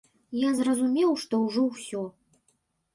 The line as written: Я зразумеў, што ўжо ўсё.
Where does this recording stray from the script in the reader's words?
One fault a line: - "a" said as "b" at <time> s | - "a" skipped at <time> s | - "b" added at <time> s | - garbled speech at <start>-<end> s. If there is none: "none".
none